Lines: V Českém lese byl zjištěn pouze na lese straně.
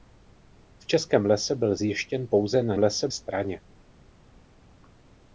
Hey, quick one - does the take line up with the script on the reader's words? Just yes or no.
yes